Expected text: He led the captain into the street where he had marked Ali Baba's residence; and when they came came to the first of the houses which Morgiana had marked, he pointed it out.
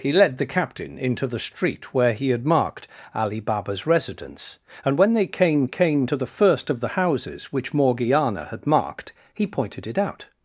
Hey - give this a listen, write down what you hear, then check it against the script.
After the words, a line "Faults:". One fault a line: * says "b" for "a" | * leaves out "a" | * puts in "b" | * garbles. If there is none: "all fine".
He led the captain into the street where he had marked Ali Baba's residence; and when they came came to the first of the houses which Morgiana had marked, he pointed it out.
Faults:
all fine